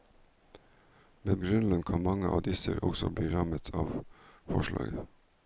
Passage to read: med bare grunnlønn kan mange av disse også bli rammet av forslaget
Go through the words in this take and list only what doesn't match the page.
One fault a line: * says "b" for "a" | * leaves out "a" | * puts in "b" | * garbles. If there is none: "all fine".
* leaves out "bare"